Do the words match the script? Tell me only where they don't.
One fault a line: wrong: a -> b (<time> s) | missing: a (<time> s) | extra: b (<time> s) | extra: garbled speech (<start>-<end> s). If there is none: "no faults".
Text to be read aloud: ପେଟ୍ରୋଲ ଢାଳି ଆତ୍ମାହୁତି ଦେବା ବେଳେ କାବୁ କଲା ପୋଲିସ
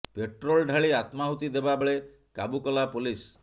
no faults